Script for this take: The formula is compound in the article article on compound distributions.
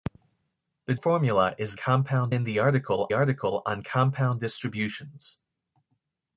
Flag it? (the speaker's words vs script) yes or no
no